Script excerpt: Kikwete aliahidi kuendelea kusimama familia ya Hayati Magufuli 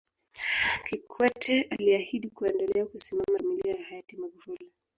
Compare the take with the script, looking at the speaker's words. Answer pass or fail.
pass